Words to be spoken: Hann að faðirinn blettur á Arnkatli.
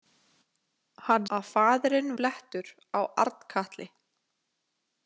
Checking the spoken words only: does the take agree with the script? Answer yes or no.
yes